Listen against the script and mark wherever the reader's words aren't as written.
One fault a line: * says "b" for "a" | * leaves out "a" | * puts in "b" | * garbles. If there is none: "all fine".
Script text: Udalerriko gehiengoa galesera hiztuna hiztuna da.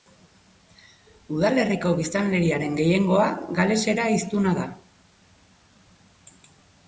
* puts in "biztanleriaren"
* leaves out "hiztuna"